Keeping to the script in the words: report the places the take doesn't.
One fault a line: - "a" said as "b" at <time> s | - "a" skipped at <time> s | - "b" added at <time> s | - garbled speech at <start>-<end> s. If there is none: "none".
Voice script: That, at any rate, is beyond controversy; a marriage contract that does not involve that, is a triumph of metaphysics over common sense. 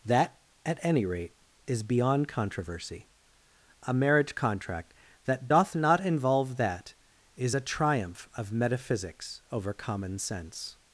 - "does" said as "doth" at 5.5 s